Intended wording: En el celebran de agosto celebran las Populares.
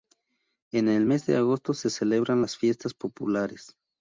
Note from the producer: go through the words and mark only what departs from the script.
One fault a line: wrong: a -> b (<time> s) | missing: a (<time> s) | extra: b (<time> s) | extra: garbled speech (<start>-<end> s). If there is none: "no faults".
wrong: celebran -> mes (1.0 s)
extra: se (1.7 s)
extra: Fiestas (2.6 s)